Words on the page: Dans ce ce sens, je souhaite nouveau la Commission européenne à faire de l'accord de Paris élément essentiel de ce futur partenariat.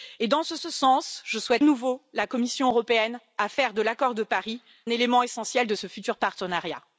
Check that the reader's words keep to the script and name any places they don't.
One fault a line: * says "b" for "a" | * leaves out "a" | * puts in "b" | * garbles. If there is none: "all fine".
all fine